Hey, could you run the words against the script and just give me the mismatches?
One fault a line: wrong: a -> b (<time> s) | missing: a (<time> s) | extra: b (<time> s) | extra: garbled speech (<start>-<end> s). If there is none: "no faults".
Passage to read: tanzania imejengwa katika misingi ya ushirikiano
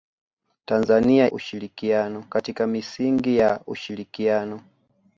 wrong: imejengwa -> ushirikiano (1.3 s)